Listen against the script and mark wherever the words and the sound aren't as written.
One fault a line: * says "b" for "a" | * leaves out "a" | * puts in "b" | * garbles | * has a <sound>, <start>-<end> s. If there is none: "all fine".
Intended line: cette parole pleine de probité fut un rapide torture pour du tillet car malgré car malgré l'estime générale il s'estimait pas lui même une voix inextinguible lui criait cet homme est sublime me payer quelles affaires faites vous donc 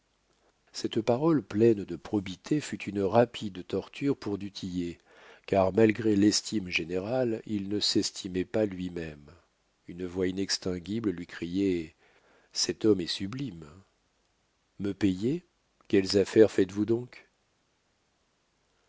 * says "une" for "un"
* leaves out "car malgré"
* puts in "ne"